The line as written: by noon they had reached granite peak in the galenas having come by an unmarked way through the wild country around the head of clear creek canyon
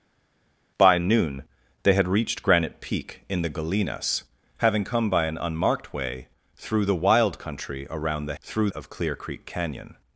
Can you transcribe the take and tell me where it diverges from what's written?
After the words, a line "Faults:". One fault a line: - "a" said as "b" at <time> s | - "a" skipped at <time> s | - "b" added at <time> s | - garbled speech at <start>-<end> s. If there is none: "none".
by noon they had reached granite peak in the galenas having come by an unmarked way through the wild country around the through of clear creek canyon
Faults:
- "head" said as "through" at 8.4 s